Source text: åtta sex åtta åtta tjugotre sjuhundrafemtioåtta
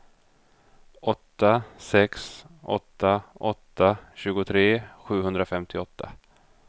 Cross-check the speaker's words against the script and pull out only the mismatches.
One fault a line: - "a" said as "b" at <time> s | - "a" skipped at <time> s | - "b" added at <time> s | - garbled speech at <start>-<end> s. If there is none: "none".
none